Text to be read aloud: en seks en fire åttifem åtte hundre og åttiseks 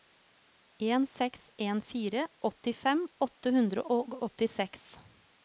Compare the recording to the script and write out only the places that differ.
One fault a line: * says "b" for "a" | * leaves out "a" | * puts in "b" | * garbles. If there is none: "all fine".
all fine